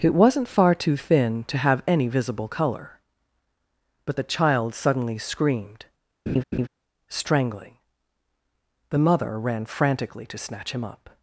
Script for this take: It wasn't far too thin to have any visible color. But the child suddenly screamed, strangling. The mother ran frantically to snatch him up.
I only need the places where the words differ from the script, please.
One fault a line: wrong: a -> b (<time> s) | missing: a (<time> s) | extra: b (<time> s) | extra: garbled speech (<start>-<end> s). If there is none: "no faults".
no faults